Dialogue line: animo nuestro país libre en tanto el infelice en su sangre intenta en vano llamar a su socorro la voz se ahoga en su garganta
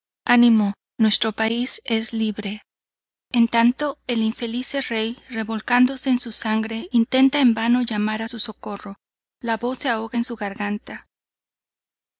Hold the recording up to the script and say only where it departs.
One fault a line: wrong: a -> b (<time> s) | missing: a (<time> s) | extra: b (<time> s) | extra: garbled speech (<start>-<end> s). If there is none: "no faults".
extra: es (1.9 s)
extra: rey revolcándose (4.8 s)